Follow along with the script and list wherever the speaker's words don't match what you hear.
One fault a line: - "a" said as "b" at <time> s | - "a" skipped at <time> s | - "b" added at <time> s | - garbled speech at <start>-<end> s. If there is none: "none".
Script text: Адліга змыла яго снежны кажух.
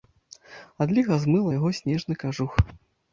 none